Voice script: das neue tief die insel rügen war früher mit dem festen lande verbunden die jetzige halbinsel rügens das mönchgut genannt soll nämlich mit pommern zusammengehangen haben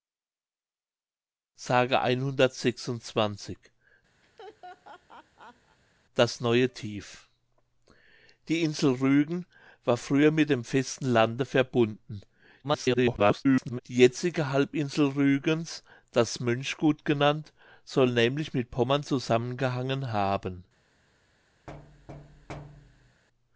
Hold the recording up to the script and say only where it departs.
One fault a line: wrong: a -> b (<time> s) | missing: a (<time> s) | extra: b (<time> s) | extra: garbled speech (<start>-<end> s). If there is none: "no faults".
extra: garbled speech (12.6-13.8 s)